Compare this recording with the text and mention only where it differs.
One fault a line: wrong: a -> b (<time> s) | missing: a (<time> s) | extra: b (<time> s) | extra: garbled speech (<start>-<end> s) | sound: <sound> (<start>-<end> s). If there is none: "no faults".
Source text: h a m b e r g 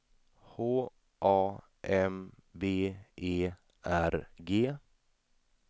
no faults